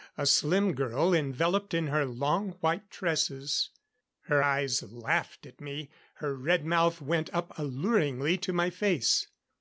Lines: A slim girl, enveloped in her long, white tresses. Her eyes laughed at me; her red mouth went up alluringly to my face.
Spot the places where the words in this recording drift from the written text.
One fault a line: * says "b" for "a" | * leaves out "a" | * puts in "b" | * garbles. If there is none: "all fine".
all fine